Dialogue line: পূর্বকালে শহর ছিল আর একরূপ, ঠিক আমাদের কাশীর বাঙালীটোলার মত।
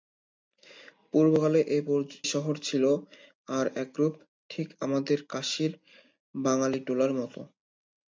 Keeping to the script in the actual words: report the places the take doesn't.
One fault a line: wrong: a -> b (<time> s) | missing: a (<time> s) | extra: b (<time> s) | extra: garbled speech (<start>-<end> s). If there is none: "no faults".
no faults